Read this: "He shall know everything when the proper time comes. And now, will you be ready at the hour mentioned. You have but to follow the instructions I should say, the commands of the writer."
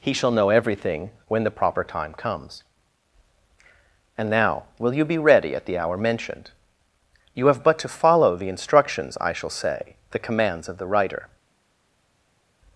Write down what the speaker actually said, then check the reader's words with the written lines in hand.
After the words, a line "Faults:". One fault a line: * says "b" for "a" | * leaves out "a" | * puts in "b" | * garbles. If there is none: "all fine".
"He shall know everything when the proper time comes. And now, will you be ready at the hour mentioned. You have but to follow the instructions I shall say, the commands of the writer."
Faults:
* says "shall" for "should"